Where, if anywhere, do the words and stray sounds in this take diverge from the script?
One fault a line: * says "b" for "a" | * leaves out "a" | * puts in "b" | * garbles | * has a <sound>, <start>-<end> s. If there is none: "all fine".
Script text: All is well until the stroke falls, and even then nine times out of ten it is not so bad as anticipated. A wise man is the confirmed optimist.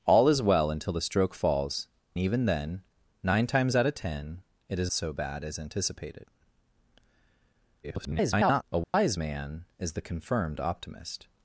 * leaves out "and"
* leaves out "not"
* garbles
* has a dropout, 8.8-8.9 s